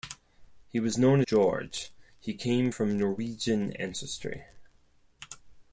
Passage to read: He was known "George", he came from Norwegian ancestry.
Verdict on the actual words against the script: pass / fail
pass